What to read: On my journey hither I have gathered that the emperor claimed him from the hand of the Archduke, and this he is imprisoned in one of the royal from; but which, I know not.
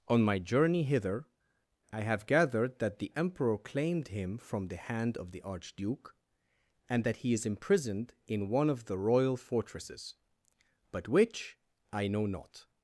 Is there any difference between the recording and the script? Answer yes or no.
yes